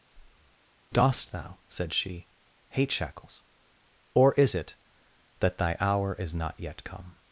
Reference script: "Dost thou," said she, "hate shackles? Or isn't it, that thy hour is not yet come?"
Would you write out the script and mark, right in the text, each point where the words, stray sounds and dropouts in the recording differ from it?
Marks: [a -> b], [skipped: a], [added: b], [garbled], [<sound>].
[breath] "Dost thou," said she, "hate shackles? Or [isn't -> is] it, that thy hour is not yet come?"